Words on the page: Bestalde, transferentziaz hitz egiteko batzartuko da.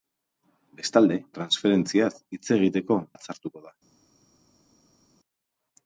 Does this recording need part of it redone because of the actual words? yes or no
no